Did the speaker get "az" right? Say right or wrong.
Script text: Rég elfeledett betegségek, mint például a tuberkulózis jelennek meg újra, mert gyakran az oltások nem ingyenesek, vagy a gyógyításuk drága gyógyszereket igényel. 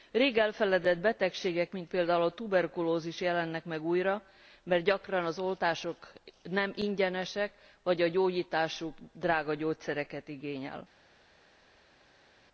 right